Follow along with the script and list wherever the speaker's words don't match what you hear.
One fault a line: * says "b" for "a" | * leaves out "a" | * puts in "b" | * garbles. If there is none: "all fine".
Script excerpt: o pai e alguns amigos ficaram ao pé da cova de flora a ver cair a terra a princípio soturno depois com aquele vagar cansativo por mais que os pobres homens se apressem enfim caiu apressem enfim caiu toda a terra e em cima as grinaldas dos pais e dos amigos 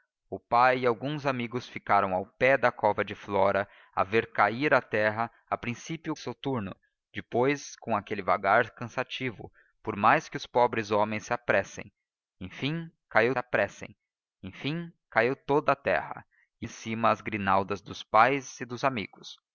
all fine